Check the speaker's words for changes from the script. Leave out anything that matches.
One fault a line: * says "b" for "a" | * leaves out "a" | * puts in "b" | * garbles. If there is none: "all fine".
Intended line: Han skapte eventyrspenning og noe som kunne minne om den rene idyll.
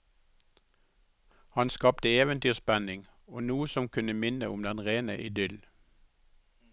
all fine